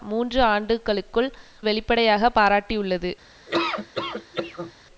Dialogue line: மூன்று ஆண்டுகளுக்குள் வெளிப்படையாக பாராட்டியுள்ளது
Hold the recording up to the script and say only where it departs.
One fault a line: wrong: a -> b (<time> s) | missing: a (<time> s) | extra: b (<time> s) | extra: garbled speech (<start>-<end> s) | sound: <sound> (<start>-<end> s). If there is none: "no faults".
sound: laugh (3.5-4.7 s)